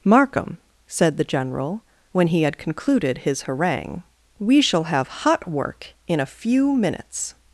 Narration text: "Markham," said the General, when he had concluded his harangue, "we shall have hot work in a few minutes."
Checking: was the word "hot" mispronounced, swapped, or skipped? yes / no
no